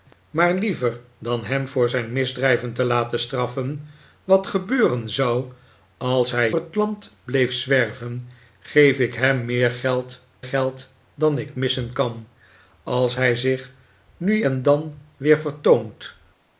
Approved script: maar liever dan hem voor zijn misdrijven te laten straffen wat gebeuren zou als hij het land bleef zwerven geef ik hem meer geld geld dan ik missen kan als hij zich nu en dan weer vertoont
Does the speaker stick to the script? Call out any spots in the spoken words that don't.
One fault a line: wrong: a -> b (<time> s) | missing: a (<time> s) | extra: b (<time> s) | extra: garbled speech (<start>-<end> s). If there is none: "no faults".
no faults